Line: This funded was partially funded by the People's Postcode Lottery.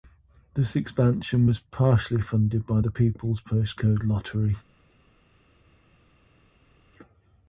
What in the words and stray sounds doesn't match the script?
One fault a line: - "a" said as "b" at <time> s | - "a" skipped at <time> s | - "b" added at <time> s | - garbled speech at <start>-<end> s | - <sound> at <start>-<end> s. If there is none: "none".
- "funded" said as "expansion" at 0.8 s